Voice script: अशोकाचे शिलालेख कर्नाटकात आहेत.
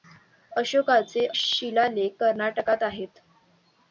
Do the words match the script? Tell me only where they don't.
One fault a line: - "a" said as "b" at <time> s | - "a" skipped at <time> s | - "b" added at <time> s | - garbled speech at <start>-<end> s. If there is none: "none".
none